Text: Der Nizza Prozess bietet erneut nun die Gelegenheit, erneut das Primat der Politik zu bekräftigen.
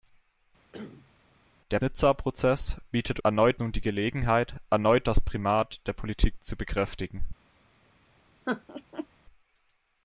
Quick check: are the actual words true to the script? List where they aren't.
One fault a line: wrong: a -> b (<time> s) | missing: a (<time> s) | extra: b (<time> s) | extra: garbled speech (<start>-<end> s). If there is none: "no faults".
no faults